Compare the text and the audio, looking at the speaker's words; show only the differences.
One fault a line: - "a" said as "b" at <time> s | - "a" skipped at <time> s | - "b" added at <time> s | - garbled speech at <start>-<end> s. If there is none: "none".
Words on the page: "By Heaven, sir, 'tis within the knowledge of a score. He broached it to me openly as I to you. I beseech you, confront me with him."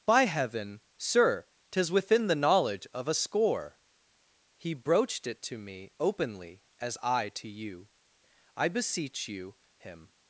- "confront me with" skipped at 9.6 s